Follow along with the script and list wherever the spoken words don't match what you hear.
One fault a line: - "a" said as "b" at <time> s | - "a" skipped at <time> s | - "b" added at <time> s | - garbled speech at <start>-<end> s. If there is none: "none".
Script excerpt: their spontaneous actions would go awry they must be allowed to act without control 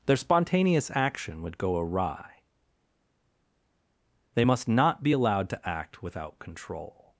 - "actions" said as "action" at 0.9 s
- "not" added at 4.7 s